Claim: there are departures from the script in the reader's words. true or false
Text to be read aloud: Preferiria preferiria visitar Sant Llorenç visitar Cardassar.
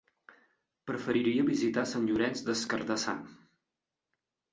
true